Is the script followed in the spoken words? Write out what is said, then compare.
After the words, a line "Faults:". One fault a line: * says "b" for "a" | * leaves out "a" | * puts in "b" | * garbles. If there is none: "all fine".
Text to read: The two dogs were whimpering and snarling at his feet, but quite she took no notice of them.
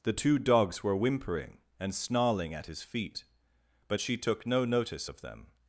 The two dogs were whimpering and snarling at his feet, but she took no notice of them.
Faults:
* leaves out "quite"